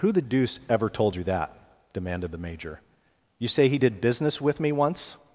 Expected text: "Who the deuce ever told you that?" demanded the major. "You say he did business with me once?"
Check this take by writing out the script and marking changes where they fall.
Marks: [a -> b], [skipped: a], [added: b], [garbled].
"Who the deuce ever told you that?" demanded the major. "You say he did business with me once?"